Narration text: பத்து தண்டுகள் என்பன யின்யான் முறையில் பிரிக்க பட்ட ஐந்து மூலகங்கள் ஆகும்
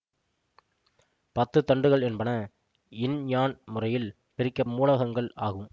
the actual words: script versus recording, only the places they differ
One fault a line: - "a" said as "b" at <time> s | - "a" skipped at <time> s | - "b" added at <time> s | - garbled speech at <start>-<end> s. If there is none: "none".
- "பட்ட ஐந்து" skipped at 4.6 s